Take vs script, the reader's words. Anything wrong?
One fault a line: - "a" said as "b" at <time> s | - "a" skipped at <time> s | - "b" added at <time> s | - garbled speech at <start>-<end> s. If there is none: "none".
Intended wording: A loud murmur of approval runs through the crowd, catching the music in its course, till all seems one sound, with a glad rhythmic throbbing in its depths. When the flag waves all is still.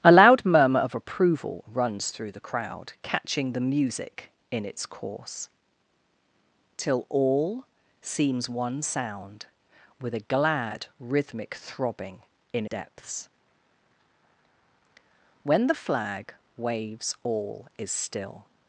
- "its" skipped at 12.7 s